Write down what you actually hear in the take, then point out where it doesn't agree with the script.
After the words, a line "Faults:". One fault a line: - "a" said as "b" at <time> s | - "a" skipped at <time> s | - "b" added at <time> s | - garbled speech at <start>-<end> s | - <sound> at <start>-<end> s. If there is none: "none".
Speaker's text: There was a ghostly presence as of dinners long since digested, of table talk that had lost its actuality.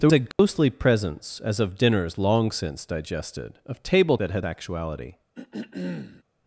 There a ghostly presence as of dinners long since digested, of table that had actuality.
Faults:
- "was" skipped at 0.1 s
- dropout at 0.3-0.4 s
- "talk" skipped at 4.2 s
- "lost its" skipped at 4.5 s
- throat clearing at 5.3-6.2 s